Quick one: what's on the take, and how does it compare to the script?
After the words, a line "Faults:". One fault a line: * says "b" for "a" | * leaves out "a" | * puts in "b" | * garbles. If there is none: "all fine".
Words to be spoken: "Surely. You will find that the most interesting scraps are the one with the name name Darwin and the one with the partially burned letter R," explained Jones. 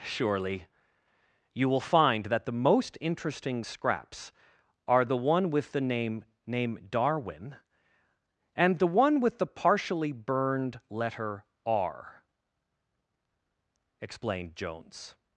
"Surely. You will find that the most interesting scraps are the one with the name name Darwin and the one with the partially burned letter R," explained Jones.
Faults:
all fine